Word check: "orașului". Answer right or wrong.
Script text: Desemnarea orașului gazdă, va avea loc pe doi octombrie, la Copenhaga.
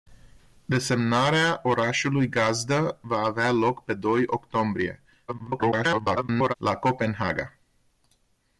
right